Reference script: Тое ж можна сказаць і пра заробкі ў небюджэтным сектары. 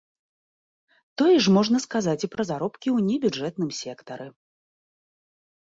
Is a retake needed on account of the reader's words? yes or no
no